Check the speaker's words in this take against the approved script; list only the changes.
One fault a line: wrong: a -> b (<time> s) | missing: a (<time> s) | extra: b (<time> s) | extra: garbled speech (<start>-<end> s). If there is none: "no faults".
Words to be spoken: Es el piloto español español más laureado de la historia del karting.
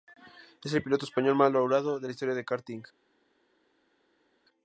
missing: español (1.4 s)